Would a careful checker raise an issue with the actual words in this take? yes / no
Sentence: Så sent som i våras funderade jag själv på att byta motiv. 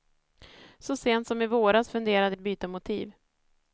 yes